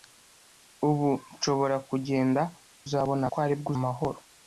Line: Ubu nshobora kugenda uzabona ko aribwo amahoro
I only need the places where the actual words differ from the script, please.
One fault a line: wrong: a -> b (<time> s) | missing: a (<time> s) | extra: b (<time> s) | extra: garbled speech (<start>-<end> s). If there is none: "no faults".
no faults